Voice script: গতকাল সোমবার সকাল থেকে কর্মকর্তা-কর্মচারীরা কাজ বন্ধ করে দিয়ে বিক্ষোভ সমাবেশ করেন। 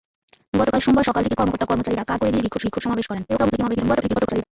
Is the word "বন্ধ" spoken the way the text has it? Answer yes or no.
no